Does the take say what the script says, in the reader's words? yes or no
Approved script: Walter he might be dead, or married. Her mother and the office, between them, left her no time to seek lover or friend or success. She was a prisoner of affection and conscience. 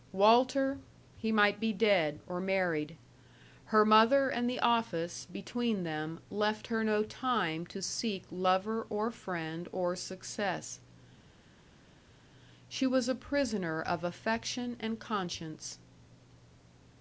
yes